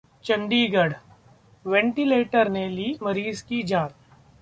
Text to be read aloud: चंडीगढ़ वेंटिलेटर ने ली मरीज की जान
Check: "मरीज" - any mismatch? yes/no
no